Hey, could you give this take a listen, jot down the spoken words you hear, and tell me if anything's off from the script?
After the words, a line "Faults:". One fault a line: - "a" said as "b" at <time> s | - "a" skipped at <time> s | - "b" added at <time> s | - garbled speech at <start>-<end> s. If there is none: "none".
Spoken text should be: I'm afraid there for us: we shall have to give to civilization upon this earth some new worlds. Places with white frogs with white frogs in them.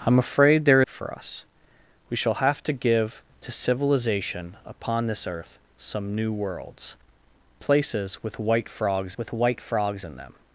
I'm afraid there for us: we shall have to give to civilization upon this earth some new worlds. Places with white frogs with white frogs in them.
Faults:
none